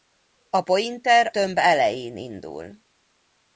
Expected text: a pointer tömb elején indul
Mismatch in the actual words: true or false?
false